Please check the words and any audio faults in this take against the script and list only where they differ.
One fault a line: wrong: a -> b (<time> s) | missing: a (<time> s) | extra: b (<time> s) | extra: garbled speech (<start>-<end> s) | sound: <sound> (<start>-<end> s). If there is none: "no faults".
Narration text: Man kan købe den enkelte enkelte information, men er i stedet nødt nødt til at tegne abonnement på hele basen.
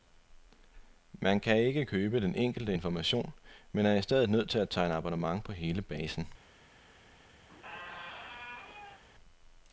extra: ikke (1.6 s)
missing: enkelte (2.7 s)
missing: nødt (4.5 s)
sound: squeak (7.5-9.0 s)